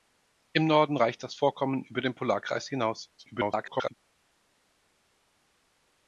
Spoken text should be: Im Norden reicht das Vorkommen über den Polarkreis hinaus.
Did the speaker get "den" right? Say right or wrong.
right